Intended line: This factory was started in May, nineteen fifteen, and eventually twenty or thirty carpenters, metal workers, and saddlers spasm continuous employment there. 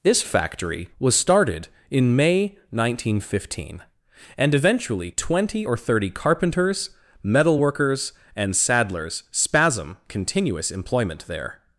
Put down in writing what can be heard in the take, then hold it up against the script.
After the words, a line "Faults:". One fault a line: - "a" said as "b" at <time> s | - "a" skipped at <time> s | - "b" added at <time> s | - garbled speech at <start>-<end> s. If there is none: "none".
This factory was started in May, nineteen fifteen, and eventually twenty or thirty carpenters, metal workers, and saddlers spasm continuous employment there.
Faults:
none